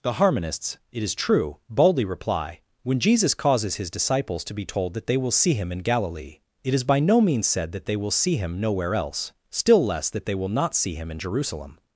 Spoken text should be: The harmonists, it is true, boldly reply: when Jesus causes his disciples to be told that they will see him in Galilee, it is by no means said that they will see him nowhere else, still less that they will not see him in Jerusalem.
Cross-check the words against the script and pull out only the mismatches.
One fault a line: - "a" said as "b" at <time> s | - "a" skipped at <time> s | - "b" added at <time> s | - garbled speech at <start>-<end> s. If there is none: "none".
none